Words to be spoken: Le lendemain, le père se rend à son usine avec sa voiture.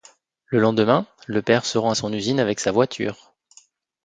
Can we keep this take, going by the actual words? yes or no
yes